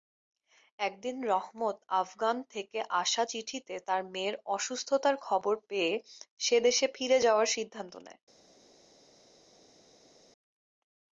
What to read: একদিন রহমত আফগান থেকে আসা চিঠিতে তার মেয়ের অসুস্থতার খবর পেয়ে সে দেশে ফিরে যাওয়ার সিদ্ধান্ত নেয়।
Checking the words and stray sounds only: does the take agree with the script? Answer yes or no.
yes